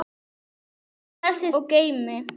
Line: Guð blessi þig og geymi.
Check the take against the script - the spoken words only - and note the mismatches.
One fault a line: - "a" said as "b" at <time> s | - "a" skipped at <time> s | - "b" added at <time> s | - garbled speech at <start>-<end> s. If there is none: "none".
- "þig" skipped at 1.5 s